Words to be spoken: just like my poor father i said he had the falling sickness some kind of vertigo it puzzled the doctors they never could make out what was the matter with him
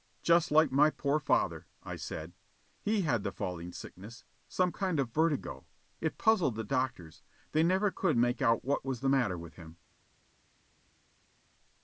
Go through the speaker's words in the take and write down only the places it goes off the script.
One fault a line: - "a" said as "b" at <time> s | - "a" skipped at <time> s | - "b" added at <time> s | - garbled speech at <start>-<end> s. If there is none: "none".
none